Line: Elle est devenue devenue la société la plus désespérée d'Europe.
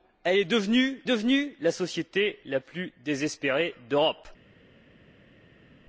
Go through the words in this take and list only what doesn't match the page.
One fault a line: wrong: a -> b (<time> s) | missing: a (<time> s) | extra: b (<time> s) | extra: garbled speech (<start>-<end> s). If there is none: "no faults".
no faults